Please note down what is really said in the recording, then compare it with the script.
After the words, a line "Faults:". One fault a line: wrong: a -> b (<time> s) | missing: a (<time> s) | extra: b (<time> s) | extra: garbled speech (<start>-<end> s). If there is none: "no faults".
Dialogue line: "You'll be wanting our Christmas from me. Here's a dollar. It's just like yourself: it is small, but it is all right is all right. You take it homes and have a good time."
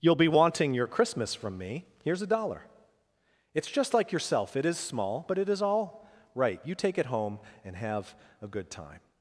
"You'll be wanting your Christmas from me. Here's a dollar. It's just like yourself: it is small, but it is all right. You take it home and have a good time."
Faults:
wrong: our -> your (0.7 s)
missing: is all right (6.6 s)
wrong: homes -> home (7.1 s)